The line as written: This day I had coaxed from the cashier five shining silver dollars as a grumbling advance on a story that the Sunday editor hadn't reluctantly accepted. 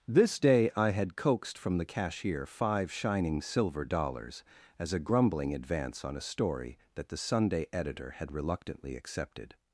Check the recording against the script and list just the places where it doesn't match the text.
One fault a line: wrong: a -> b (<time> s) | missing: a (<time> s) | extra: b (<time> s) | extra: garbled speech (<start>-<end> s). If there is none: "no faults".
wrong: hadn't -> had (8.1 s)